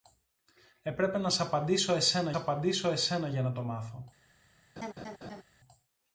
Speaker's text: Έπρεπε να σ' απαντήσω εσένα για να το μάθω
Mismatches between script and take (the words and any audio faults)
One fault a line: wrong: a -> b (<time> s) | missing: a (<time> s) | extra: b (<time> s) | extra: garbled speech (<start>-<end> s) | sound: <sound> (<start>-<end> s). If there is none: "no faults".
extra: απαντήσω εσένα (2.3 s)
sound: laugh (4.8-5.4 s)